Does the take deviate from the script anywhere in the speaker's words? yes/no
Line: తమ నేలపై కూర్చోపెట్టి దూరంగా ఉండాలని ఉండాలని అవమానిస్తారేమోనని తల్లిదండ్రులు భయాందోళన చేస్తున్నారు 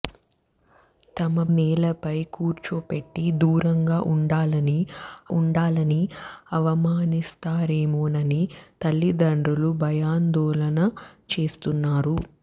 no